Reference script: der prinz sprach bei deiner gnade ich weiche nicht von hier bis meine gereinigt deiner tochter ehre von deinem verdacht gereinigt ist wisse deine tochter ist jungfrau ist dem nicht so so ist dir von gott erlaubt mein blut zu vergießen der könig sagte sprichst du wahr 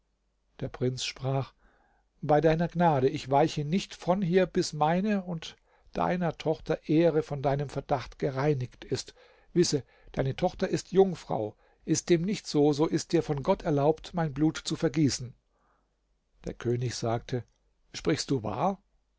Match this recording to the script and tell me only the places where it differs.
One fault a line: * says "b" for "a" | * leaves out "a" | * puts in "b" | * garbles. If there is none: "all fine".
* says "und" for "gereinigt"